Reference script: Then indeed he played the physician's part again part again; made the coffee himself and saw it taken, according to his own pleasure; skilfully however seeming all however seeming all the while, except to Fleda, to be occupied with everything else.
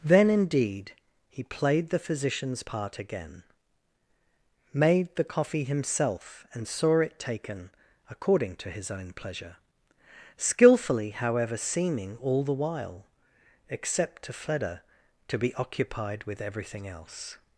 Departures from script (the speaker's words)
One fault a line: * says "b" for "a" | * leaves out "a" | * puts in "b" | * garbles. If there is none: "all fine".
* leaves out "part again"
* leaves out "however seeming all"